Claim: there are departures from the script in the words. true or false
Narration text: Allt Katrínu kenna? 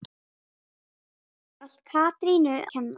false